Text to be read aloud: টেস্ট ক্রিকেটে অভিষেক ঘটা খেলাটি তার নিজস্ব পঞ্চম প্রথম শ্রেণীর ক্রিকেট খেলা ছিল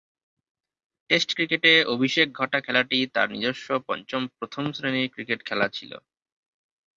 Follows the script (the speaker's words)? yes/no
yes